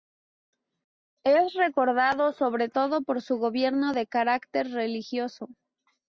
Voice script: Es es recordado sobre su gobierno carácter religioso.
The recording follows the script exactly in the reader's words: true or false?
false